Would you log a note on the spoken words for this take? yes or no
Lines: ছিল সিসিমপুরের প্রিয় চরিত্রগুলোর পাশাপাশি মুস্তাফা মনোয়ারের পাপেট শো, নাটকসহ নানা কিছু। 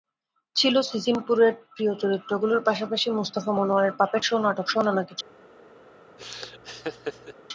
no